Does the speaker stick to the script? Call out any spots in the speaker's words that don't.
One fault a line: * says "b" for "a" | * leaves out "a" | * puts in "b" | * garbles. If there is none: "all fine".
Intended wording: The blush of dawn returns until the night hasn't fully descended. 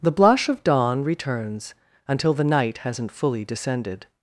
all fine